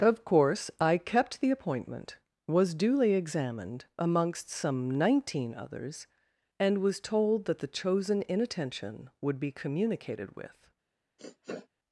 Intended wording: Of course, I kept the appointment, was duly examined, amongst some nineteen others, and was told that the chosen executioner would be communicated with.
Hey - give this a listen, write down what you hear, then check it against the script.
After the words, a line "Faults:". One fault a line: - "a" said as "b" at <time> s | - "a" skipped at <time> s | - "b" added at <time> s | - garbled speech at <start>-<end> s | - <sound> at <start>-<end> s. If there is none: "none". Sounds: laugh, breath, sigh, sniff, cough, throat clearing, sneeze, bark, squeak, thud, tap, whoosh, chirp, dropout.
Of course, I kept the appointment, was duly examined, amongst some nineteen others, and was told that the chosen inattention would be communicated with.
Faults:
- "executioner" said as "inattention" at 8.3 s
- sniff at 11.2-11.7 s